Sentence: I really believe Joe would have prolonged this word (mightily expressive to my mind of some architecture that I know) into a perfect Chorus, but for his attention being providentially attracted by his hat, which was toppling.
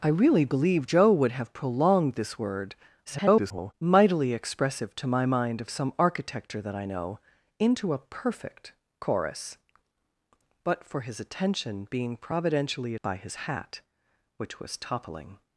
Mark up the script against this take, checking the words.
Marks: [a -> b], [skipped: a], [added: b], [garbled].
I really believe Joe would have prolonged this word [garbled] (mightily expressive to my mind of some architecture that I know) into a perfect Chorus, but for his attention being providentially [skipped: attracted] by his hat, which was toppling.